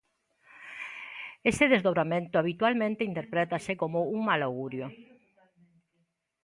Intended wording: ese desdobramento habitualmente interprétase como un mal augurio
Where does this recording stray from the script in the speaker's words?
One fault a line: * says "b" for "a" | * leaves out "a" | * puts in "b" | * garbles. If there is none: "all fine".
all fine